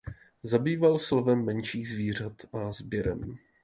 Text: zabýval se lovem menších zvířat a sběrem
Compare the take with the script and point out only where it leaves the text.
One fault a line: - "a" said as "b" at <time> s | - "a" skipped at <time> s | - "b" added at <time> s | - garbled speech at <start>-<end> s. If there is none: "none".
none